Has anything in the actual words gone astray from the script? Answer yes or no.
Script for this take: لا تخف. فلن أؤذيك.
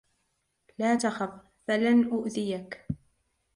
no